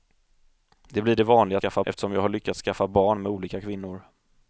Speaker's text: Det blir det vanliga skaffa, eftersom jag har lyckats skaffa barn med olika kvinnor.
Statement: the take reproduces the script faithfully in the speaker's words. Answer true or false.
true